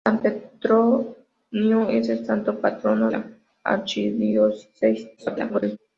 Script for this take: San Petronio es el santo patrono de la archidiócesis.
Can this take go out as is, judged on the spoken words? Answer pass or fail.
fail